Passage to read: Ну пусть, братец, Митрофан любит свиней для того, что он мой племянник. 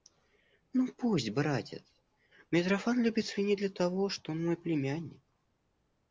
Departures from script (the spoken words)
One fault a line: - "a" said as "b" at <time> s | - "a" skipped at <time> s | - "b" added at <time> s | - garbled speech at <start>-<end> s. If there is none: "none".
none